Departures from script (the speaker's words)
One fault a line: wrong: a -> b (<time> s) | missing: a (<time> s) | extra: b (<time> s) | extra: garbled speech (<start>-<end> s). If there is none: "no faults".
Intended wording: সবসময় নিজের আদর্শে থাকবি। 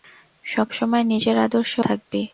no faults